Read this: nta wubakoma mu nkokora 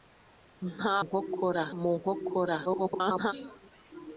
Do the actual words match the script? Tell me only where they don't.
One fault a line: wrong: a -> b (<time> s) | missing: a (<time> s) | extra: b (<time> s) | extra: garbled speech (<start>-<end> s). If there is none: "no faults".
wrong: wubakoma -> nkokora (1.0 s)
extra: garbled speech (2.6-3.3 s)